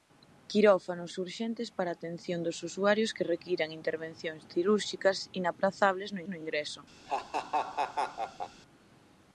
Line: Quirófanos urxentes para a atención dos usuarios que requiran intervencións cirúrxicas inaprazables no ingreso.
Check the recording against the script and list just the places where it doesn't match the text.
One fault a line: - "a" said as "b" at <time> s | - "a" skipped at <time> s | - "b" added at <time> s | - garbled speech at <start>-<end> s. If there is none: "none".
- "no" added at 6.3 s